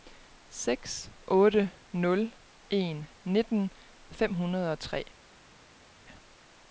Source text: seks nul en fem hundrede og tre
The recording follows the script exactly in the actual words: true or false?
false